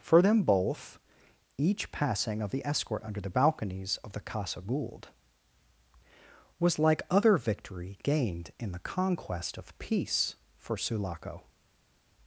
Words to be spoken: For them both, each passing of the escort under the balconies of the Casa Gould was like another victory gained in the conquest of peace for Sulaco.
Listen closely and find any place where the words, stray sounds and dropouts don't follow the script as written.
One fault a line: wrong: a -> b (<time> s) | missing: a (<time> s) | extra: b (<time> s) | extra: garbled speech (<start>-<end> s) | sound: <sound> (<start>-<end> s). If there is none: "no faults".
wrong: another -> other (7.1 s)